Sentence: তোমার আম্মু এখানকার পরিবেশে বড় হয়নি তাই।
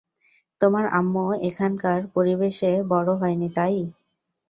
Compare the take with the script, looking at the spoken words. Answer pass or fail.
pass